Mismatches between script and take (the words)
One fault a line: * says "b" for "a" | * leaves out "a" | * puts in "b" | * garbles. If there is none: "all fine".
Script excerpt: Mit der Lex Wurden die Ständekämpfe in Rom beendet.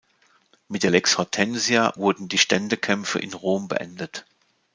* puts in "Hortensia"